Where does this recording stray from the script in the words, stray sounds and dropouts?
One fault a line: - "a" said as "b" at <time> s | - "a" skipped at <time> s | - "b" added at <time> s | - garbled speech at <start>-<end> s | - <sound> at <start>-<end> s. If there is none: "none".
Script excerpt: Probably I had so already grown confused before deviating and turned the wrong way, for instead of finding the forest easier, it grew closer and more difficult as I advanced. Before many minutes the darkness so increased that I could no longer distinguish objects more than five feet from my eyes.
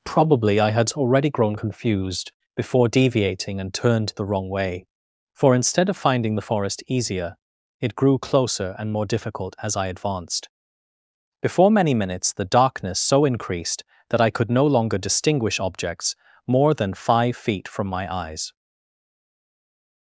- "so" skipped at 0.9 s